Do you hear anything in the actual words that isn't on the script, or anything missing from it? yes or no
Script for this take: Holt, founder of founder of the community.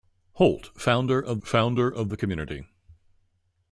no